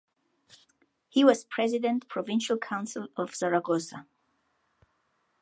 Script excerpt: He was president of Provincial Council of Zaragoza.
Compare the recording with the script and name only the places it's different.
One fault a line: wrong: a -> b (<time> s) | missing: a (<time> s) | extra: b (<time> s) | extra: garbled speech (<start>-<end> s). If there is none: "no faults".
missing: of (2.0 s)